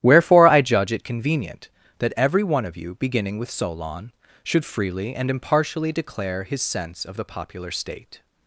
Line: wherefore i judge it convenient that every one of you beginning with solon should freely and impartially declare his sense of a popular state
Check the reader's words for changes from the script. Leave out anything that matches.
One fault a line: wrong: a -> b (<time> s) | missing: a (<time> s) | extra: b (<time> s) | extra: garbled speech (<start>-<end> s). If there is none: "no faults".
wrong: a -> the (7.2 s)